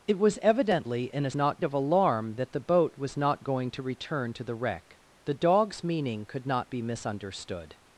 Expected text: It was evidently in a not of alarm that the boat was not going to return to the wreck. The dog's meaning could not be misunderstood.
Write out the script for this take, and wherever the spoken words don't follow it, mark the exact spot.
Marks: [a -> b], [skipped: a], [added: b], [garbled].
It was evidently in a not of alarm that the boat was not going to return to the wreck. The dog's meaning could not be misunderstood.